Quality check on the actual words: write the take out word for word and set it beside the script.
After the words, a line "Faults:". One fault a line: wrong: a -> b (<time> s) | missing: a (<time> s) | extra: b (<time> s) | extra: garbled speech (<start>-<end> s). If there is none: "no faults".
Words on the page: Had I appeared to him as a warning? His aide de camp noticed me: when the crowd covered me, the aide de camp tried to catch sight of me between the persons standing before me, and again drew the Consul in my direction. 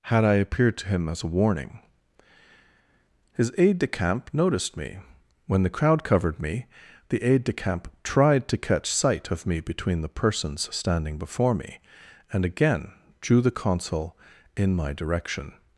Had I appeared to him as a warning? His aide de camp noticed me: when the crowd covered me, the aide de camp tried to catch sight of me between the persons standing before me, and again drew the Consul in my direction.
Faults:
no faults